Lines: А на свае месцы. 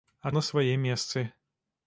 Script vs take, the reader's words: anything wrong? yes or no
no